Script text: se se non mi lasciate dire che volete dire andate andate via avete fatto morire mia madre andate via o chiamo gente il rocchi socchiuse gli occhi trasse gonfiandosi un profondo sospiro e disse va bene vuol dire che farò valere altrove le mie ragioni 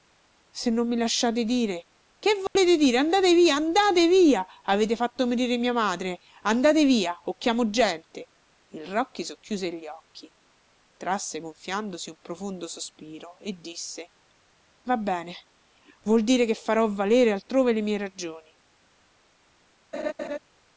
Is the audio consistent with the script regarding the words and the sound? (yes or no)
no